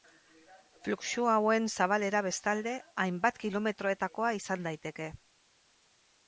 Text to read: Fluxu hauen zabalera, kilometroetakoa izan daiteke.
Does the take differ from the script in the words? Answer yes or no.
yes